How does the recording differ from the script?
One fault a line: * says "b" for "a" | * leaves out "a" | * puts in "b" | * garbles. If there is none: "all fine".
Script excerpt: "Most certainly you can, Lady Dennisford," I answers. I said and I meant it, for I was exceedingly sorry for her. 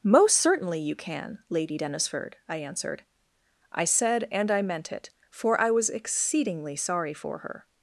* says "answered" for "answers"